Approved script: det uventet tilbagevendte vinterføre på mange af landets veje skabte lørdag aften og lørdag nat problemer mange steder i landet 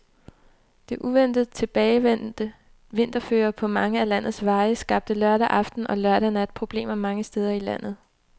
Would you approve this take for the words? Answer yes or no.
yes